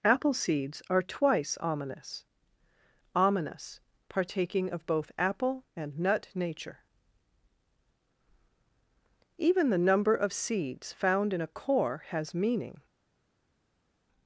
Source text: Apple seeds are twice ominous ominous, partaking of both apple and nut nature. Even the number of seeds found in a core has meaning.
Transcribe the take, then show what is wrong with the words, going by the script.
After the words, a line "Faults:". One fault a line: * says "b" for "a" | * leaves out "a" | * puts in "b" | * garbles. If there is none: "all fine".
Apple seeds are twice ominous ominous, partaking of both apple and nut nature. Even the number of seeds found in a core has meaning.
Faults:
all fine